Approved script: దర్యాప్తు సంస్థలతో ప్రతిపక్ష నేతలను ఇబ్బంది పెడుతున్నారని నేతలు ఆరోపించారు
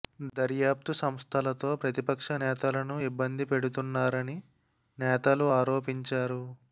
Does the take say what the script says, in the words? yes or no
yes